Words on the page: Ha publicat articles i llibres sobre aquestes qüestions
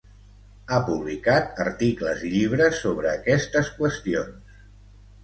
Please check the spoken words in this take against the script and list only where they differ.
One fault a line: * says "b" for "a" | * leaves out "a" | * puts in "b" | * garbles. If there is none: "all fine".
all fine